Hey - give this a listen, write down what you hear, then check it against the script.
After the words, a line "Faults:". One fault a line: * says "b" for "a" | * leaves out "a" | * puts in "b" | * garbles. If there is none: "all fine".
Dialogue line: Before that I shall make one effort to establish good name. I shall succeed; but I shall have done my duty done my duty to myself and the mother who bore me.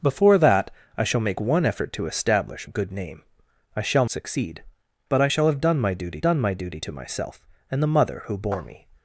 Before that I shall make one effort to establish good name. I shall succeed; but I shall have done my duty done my duty to myself and the mother who bore me.
Faults:
all fine